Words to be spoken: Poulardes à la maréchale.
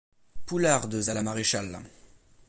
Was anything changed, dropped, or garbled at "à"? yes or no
no